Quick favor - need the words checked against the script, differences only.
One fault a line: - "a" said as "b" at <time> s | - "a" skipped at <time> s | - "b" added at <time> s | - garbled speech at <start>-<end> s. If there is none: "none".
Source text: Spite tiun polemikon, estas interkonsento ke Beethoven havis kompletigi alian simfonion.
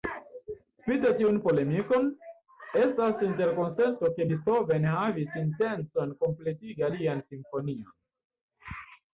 - "intencon" added at 5.4 s